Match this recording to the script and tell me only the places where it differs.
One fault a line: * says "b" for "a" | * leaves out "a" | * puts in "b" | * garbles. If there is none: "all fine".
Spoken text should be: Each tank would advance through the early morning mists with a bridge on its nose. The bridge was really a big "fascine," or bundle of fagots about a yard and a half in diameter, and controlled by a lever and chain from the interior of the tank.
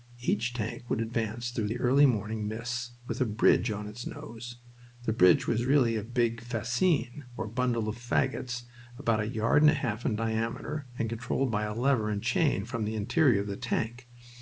all fine